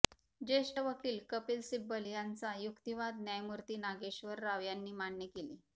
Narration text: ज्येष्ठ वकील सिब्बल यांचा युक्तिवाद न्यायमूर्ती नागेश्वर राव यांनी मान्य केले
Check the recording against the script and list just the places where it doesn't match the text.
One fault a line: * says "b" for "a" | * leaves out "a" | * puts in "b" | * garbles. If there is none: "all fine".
* puts in "कपिल"